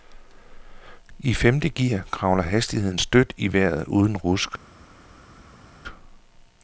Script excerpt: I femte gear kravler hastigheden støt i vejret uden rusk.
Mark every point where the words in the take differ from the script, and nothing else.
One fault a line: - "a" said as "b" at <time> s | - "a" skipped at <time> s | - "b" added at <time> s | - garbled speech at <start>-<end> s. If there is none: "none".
none